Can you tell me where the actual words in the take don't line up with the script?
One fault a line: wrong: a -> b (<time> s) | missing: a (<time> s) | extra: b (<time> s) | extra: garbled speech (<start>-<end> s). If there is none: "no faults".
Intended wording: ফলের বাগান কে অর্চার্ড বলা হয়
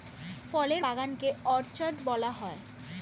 no faults